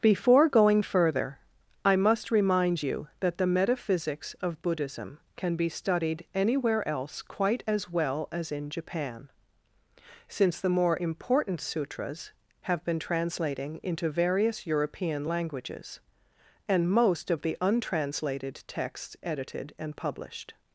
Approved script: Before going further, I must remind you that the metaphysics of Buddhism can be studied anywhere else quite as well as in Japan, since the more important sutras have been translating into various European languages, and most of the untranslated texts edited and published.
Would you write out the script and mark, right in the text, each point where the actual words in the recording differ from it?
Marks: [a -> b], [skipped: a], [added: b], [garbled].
Before going further, I must remind you that the metaphysics of Buddhism can be studied anywhere else quite as well as in Japan, since the more important sutras have been translating into various European languages, and most of the untranslated texts edited and published.